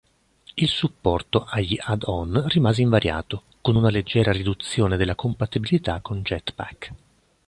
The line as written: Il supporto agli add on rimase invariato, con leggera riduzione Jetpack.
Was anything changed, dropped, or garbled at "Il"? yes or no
no